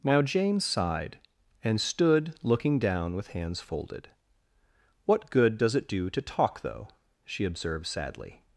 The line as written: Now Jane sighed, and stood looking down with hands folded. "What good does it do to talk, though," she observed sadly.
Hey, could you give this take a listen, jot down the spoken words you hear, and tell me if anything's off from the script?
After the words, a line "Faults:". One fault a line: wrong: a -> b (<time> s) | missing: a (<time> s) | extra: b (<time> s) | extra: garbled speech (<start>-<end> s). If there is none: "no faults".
Now Jane sighed, and stood looking down with hands folded. "What good does it do to talk, though," she observed sadly.
Faults:
no faults